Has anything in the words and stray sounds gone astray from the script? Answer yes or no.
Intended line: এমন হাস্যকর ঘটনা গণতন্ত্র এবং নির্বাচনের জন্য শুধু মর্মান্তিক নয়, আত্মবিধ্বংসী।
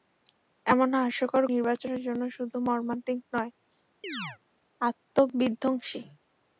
yes